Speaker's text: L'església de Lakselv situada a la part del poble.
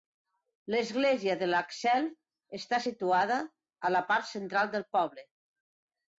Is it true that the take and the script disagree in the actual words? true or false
true